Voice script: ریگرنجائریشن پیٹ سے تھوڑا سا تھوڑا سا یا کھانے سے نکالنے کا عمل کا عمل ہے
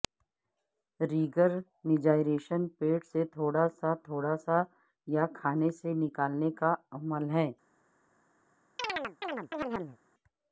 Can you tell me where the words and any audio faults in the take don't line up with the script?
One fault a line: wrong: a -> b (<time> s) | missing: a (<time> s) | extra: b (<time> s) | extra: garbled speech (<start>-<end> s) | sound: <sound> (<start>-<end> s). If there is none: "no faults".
missing: کا عمل (7.3 s)
sound: chirp (8.8-10.0 s)